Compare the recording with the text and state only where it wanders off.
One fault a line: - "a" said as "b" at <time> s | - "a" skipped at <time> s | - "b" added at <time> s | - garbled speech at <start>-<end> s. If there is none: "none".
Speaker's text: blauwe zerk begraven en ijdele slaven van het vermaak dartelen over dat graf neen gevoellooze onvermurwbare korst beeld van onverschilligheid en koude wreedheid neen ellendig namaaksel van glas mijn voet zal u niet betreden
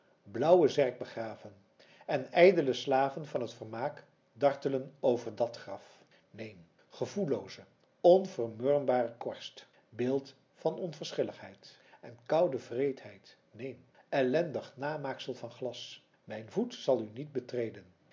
none